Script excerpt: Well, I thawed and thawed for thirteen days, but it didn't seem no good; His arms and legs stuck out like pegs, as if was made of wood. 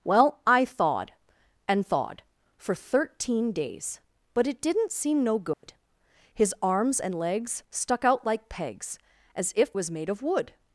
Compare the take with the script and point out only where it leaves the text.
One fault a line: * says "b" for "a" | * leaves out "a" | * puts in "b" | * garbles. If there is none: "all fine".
all fine